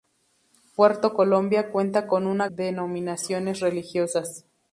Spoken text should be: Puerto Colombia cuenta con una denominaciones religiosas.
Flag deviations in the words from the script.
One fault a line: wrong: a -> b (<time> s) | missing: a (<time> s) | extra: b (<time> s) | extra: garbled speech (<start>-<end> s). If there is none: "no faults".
no faults